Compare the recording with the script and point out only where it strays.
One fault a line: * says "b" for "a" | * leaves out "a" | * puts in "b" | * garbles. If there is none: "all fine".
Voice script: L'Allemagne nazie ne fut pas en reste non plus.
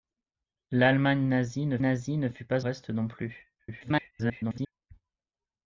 * puts in "nazie ne"
* leaves out "en"
* garbles